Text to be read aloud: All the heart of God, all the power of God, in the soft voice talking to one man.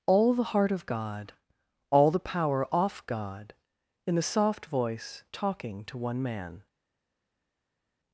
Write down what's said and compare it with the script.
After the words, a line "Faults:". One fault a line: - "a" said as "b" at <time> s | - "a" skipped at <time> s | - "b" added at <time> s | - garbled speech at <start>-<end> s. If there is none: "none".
All the heart of God, all the power off God, in the soft voice talking to one man.
Faults:
- "of" said as "off" at 2.7 s